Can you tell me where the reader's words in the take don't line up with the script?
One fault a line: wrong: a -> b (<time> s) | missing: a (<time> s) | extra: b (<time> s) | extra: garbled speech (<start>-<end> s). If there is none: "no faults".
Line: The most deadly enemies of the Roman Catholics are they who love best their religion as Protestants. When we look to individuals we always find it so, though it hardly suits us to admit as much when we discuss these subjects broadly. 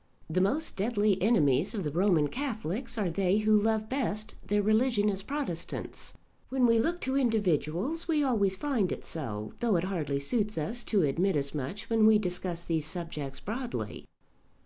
no faults